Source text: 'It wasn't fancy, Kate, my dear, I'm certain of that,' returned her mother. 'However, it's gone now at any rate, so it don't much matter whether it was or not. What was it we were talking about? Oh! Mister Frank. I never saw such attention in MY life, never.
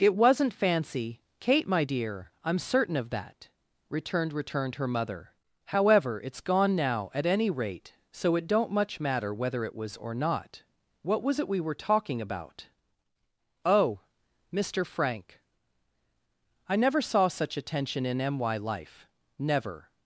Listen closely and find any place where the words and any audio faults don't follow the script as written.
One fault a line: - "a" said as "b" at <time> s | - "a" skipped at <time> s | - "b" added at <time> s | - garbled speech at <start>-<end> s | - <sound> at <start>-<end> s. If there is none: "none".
- "returned" added at 4.3 s